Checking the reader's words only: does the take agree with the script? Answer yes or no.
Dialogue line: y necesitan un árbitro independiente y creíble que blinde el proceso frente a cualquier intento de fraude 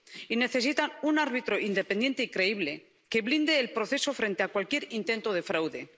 yes